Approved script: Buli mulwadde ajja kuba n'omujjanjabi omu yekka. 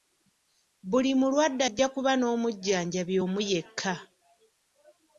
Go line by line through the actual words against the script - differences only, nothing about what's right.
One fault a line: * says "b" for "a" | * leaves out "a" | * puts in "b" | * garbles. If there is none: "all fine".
all fine